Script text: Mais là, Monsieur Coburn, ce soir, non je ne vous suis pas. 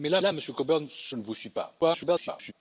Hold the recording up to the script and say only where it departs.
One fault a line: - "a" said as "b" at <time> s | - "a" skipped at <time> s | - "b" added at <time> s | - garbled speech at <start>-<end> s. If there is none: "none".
- "là" added at 0.2 s
- "soir non je" skipped at 1.2 s
- garbled speech at 1.8-2.5 s